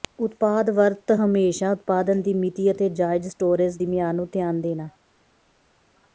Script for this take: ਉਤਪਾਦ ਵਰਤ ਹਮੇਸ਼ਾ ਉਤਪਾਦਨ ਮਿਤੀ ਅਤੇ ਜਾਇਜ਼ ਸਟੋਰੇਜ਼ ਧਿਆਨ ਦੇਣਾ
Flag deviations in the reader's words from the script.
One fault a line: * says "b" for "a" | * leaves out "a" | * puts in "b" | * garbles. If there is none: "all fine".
* puts in "ਦੀ"
* puts in "ਦੀ ਮਿਆਦ ਨੂੰ"